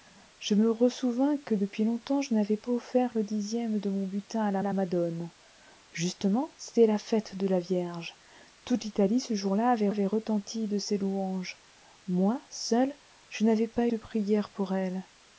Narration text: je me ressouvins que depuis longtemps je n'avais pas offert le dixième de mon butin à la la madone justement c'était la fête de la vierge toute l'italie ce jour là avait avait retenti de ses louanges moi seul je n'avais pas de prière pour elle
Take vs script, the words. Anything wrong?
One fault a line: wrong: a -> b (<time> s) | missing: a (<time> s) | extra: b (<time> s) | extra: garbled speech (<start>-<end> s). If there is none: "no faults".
no faults